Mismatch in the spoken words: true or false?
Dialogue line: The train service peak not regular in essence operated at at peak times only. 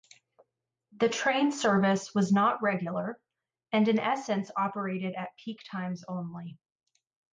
true